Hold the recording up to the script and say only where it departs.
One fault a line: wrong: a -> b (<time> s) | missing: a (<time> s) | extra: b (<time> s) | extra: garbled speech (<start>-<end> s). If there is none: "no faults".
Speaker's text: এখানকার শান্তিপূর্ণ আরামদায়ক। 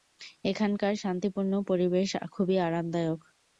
extra: পরিবেশ খুবই (1.7 s)